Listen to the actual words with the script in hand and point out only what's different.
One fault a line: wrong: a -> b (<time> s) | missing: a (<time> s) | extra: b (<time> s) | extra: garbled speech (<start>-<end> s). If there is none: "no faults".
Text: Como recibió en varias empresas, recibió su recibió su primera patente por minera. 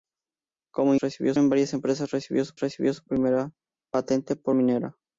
no faults